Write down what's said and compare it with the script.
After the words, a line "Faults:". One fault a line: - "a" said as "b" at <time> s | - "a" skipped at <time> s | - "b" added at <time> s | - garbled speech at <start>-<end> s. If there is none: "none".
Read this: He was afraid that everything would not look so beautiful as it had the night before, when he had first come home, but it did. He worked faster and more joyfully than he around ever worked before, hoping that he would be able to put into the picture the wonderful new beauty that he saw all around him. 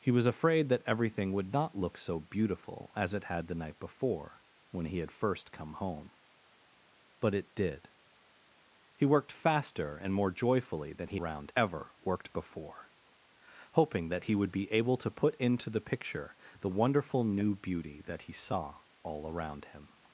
He was afraid that everything would not look so beautiful as it had the night before, when he had first come home, but it did. He worked faster and more joyfully than he around ever worked before, hoping that he would be able to put into the picture the wonderful new beauty that he saw all around him.
Faults:
none